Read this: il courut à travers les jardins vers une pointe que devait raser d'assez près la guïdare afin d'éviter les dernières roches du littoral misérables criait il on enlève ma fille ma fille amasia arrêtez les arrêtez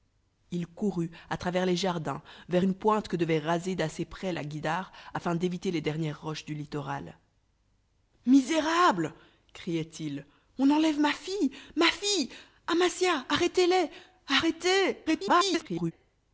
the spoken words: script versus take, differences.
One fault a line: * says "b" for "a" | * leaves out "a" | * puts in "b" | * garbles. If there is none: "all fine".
* garbles